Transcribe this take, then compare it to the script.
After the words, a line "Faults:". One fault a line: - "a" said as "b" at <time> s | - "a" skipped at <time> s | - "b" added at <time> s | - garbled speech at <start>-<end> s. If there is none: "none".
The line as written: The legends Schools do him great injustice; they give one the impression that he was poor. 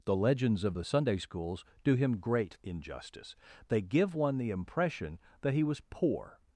The legends of the Sunday Schools do him great injustice; they give one the impression that he was poor.
Faults:
- "of the Sunday" added at 0.6 s